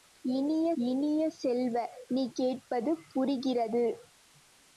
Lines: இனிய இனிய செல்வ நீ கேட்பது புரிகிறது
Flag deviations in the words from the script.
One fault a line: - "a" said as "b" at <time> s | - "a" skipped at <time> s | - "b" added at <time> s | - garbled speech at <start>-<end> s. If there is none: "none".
none